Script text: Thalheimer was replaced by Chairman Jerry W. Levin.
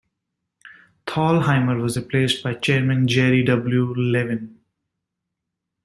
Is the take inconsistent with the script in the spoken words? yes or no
no